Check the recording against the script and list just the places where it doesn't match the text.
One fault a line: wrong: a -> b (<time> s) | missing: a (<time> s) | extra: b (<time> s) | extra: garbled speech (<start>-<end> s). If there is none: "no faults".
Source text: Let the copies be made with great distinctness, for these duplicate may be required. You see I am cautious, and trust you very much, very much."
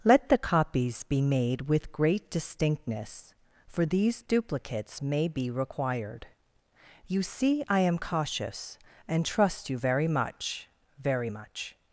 wrong: duplicate -> duplicates (4.2 s)